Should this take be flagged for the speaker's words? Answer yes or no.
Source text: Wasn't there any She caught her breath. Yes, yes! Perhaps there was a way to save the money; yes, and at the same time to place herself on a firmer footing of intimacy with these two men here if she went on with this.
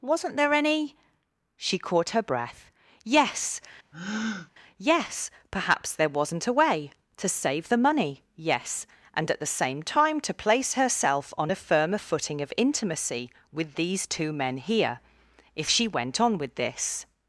yes